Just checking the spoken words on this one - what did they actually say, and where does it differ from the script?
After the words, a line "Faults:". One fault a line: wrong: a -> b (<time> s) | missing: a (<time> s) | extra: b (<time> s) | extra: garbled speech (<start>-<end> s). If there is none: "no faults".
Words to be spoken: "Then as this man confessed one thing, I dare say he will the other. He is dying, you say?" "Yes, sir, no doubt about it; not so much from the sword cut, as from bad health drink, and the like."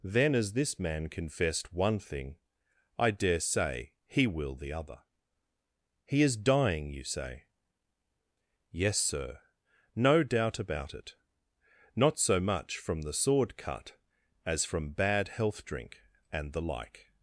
"Then as this man confessed one thing, I dare say he will the other. He is dying, you say?" "Yes, sir, no doubt about it; not so much from the sword cut, as from bad health drink, and the like."
Faults:
no faults